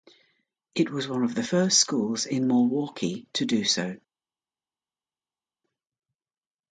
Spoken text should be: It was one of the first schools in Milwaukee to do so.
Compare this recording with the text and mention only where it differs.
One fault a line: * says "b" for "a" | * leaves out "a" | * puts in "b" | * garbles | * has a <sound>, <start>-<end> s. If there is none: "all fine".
all fine